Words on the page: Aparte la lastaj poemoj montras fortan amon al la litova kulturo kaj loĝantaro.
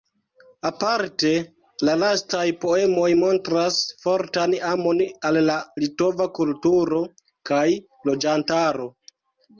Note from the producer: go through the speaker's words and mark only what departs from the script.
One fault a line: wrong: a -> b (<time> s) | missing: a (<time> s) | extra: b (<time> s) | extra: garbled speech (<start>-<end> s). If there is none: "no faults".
no faults